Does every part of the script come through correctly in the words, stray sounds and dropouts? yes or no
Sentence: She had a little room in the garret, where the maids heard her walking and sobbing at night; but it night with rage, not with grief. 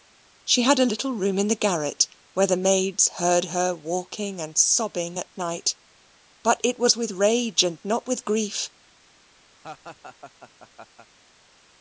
no